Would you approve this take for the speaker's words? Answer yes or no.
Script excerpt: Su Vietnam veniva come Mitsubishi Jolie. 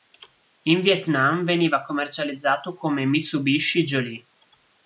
no